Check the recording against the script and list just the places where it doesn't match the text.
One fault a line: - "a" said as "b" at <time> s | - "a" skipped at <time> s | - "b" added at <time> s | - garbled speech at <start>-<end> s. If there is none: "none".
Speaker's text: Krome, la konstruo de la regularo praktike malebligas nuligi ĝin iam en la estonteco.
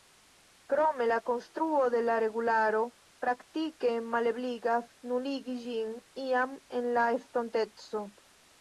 none